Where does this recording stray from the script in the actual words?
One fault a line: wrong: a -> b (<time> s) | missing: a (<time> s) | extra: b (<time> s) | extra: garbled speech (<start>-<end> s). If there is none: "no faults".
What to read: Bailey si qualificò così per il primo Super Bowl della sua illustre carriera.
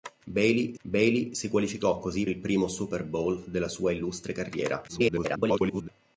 extra: bailey (0.8 s)
missing: per (2.3 s)
extra: garbled speech (4.9-5.9 s)